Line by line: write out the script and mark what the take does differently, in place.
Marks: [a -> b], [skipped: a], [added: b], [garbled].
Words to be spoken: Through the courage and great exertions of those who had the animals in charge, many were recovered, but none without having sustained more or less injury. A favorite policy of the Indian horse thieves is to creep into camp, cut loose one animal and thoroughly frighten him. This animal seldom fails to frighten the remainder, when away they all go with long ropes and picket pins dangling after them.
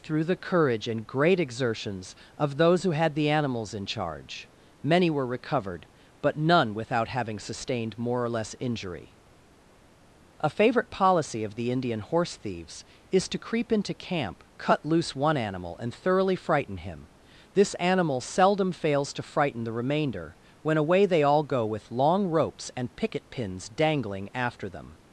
Through the courage and great exertions of those who had the animals in charge, many were recovered, but none without having sustained more or less injury. A favorite policy of the Indian horse thieves is to creep into camp, cut loose one animal and thoroughly frighten him. This animal seldom fails to frighten the remainder, when away they all go with long ropes and picket pins dangling after them.